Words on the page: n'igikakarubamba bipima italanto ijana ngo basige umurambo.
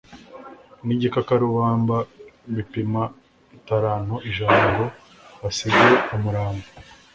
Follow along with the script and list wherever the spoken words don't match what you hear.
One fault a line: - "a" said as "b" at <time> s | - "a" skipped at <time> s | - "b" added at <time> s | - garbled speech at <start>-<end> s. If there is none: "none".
none